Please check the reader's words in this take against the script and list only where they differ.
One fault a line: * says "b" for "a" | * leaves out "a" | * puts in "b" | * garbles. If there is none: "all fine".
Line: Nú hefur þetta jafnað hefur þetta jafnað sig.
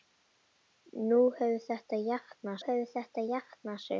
all fine